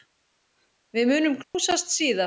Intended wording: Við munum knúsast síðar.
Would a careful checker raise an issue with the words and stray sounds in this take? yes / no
yes